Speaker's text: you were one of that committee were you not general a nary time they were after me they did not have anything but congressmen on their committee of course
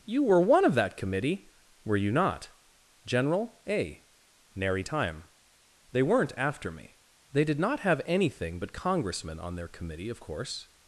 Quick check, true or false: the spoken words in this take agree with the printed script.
false